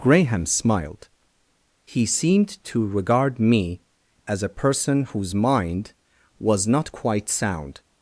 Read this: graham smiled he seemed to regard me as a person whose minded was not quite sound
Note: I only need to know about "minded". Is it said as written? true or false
false